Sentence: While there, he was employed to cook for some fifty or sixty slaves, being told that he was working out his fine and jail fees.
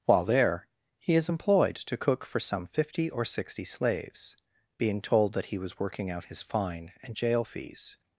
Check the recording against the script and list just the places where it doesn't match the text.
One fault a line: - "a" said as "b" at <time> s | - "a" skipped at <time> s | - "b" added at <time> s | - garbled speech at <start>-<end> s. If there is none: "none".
- "was" said as "is" at 1.1 s